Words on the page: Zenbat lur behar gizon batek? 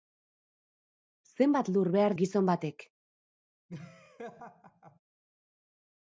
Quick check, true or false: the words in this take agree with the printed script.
true